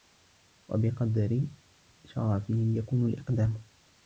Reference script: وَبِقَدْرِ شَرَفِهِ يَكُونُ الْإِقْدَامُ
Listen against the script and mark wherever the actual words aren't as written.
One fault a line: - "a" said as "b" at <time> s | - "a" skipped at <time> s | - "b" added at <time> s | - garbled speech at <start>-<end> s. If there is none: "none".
none